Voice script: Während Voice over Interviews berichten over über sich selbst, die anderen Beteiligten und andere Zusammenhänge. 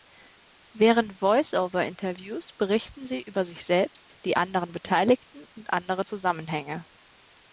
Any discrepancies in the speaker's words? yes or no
yes